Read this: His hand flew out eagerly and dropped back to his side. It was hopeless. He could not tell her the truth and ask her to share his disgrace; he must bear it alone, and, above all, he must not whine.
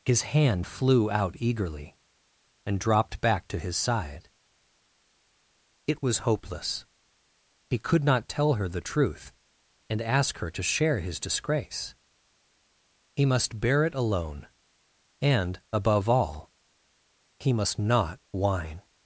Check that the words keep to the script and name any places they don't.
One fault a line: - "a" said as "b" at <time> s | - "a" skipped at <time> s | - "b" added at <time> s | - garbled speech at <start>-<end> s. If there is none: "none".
none